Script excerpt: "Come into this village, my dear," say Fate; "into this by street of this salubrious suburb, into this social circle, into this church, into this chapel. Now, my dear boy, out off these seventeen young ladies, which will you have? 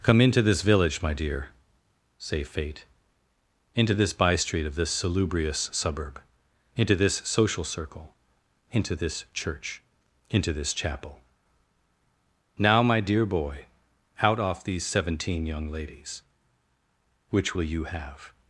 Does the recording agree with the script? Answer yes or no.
yes